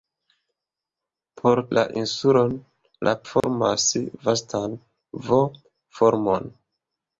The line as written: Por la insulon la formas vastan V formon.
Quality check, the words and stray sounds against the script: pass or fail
fail